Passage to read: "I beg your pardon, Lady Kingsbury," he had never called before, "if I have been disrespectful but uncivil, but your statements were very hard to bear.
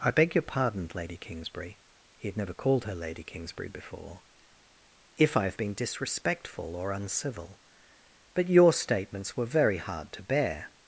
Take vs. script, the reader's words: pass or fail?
fail